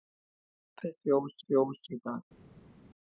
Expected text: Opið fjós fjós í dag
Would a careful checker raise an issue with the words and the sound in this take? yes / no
no